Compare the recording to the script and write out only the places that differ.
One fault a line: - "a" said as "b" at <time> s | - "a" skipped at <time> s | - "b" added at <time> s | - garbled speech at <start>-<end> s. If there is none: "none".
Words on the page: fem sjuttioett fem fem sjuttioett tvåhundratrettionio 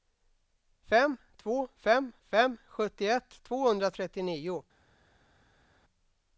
- "sjuttioett" said as "två" at 1.4 s